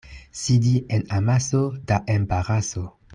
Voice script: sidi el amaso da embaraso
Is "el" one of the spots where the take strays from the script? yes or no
yes